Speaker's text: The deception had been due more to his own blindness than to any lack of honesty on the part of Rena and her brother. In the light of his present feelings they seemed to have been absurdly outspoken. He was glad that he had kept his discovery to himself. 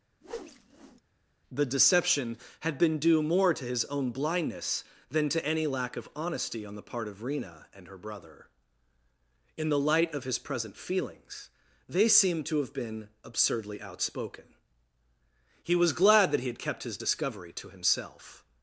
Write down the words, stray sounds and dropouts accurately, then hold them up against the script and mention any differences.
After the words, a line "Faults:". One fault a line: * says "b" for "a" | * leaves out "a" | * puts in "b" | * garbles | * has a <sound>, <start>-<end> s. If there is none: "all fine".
The deception had been due more to his own blindness than to any lack of honesty on the part of Rena and her brother. In the light of his present feelings they seemed to have been absurdly outspoken. He was glad that he had kept his discovery to himself.
Faults:
* has a whoosh, 0.2-1.0 s